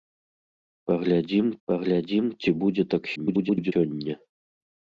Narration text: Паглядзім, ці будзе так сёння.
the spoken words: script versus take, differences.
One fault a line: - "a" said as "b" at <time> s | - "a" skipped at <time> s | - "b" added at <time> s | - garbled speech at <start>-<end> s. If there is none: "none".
- "паглядзім" added at 1.7 s
- garbled speech at 3.2-3.7 s